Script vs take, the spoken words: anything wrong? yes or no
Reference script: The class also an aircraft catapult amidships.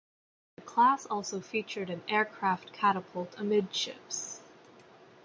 yes